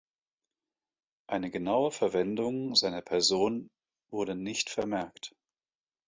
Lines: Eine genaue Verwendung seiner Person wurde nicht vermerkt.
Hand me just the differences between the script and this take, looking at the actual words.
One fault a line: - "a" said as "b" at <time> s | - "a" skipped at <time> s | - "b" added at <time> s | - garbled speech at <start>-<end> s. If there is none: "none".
none